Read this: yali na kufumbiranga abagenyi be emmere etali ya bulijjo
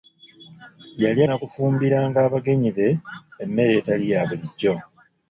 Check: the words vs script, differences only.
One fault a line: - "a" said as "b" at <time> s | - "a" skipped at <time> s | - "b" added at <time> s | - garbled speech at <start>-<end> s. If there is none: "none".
none